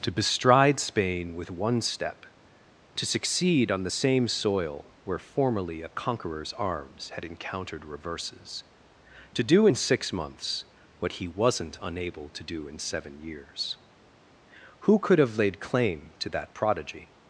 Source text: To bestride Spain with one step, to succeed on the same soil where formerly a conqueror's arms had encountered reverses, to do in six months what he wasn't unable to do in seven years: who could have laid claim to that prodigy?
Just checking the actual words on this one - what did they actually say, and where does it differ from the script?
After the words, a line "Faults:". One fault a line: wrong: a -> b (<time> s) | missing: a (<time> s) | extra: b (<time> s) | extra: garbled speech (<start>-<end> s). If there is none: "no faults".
To bestride Spain with one step, to succeed on the same soil where formerly a conqueror's arms had encountered reverses, to do in six months what he wasn't unable to do in seven years: who could have laid claim to that prodigy?
Faults:
no faults